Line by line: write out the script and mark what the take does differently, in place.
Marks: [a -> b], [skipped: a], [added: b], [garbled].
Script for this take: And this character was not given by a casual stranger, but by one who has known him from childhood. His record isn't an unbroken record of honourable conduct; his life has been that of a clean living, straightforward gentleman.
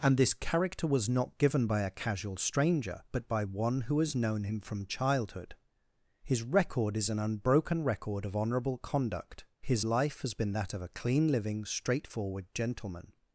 And this character was not given by a casual stranger, but by one who has known him from childhood. His record [isn't -> is] an unbroken record of honourable conduct; his life has been that of a clean living, straightforward gentleman.